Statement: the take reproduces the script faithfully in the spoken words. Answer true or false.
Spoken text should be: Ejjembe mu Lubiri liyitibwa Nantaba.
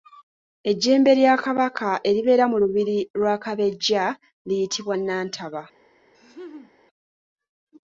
false